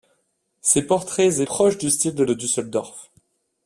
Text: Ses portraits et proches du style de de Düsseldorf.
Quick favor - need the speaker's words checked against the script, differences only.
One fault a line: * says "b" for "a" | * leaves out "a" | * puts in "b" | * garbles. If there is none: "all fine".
all fine